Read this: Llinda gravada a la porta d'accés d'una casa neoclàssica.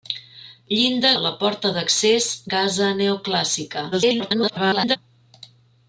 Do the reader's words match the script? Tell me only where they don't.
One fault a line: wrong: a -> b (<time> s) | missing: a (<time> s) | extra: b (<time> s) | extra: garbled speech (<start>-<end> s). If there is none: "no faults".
missing: gravada (1.1 s)
missing: d'una (2.3 s)
extra: garbled speech (3.9-5.0 s)